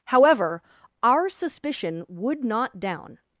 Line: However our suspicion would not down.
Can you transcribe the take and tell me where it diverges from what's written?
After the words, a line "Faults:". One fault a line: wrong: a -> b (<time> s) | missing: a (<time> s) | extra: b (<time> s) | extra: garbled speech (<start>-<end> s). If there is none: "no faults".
However our suspicion would not down.
Faults:
no faults